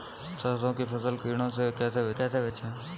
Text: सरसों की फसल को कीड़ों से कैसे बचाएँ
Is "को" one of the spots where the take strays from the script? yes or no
yes